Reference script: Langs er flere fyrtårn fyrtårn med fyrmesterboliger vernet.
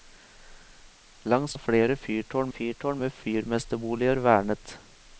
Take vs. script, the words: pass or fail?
pass